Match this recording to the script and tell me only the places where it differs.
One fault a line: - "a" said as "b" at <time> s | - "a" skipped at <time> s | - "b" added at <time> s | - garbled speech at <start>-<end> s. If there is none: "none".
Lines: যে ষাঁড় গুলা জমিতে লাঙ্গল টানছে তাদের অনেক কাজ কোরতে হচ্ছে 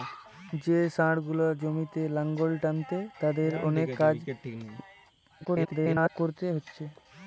- garbled speech at 5.4-6.1 s